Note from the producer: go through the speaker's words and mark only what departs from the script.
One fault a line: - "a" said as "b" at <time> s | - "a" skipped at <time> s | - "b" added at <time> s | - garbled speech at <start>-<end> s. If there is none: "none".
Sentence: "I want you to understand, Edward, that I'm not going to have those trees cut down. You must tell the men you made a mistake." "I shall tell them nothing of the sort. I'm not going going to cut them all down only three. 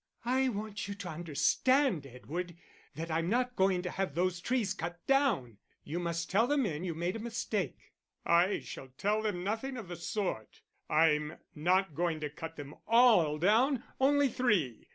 - "going" skipped at 12.2 s